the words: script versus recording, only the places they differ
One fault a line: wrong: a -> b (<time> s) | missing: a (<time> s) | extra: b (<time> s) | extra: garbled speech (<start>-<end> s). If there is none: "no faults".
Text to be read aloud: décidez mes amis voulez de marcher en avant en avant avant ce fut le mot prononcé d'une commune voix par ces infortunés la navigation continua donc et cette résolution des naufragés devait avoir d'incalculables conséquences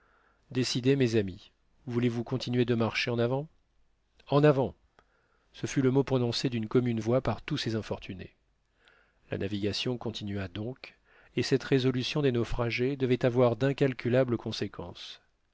extra: vous continuer (2.1 s)
missing: avant (4.7 s)
extra: tous (7.4 s)